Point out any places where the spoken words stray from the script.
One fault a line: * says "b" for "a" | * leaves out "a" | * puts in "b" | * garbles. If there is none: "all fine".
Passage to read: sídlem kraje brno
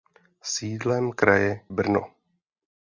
all fine